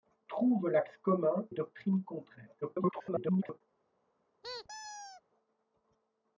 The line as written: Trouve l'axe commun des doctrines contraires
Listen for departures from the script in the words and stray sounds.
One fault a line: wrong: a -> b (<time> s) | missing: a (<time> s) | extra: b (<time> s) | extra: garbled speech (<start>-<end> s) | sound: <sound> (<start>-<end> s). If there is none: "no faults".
missing: des (1.5 s)
extra: garbled speech (2.6-3.6 s)
sound: squeak (4.4-5.2 s)